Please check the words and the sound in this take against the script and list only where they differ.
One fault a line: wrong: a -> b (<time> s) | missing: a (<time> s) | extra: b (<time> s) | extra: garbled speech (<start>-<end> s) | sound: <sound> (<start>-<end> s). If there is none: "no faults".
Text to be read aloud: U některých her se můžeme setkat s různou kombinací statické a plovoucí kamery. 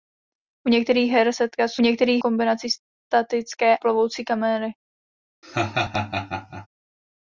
missing: se můžeme (1.3 s)
wrong: různou -> některých (1.8 s)
missing: a (3.8 s)
sound: laugh (5.4-6.7 s)